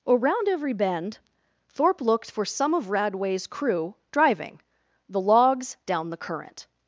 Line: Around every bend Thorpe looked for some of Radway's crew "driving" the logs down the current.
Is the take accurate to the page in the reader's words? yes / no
yes